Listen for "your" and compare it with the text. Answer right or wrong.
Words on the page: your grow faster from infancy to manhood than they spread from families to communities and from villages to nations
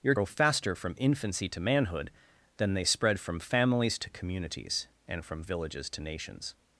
right